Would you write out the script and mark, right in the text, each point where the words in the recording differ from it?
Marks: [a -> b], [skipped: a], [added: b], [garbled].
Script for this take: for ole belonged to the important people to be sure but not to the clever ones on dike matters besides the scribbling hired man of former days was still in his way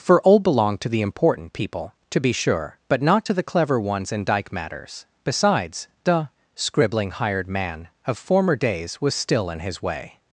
for ole belonged to the important people to be sure but not to the clever ones [on -> in] dike matters besides the scribbling hired man of former days was still in his way